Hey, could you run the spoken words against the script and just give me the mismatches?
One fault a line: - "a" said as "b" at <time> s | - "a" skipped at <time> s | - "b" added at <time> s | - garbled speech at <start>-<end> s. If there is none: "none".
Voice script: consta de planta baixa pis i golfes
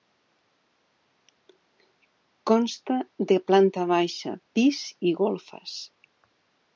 none